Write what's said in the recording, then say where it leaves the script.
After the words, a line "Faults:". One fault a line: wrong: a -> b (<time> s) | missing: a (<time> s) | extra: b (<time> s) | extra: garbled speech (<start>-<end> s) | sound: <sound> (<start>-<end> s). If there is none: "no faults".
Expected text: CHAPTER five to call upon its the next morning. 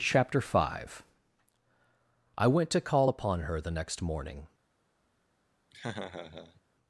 CHAPTER five I WENT to call upon her the next morning.
Faults:
extra: I WENT (2.4 s)
wrong: its -> her (3.4 s)
sound: laugh (5.7-6.6 s)